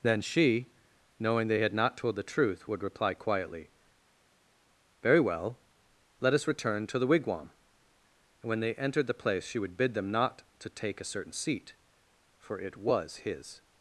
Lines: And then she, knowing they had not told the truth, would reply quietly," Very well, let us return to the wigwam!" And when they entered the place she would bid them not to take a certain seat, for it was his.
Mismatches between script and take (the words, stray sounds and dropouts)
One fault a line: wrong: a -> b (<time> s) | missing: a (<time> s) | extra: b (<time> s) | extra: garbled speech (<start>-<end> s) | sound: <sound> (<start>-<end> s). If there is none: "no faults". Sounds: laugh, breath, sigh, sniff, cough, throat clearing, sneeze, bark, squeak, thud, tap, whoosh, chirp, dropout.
missing: And (0.0 s)